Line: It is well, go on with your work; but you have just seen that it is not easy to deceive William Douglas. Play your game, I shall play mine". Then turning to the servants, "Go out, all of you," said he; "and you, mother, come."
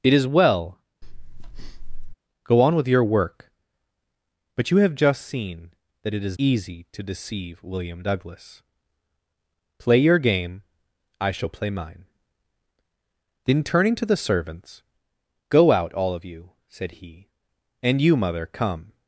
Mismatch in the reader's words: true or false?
true